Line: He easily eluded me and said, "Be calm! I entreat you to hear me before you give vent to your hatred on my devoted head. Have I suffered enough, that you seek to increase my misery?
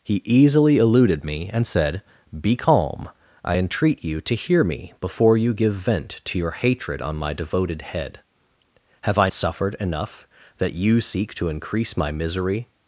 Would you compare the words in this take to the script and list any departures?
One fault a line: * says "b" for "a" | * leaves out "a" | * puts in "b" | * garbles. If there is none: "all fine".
all fine